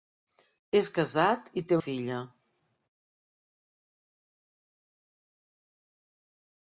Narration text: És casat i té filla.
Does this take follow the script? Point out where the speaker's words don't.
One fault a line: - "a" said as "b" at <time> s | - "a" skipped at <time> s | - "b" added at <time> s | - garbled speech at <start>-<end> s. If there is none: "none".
none